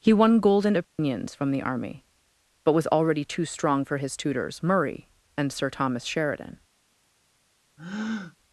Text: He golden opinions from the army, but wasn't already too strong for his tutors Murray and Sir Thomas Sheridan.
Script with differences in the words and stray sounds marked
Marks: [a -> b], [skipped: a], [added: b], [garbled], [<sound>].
He [added: won] golden opinions [dropout] from the army, but [wasn't -> was] already too strong for his tutors Murray and Sir Thomas Sheridan. [breath]